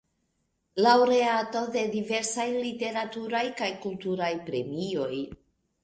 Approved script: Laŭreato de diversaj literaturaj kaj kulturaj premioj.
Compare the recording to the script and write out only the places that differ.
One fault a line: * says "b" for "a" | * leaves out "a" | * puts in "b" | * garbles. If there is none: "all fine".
all fine